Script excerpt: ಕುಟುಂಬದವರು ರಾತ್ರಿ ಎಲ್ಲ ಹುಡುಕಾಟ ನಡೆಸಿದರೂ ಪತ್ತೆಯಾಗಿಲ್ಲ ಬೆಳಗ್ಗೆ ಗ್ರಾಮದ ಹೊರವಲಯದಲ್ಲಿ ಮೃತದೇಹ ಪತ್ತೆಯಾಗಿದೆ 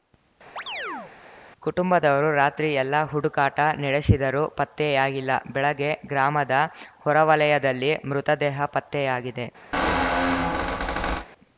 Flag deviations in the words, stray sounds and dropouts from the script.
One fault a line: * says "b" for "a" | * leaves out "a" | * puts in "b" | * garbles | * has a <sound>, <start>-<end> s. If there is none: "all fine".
* has a chirp, 0.6-1.1 s
* has a squeak, 9.7-11.3 s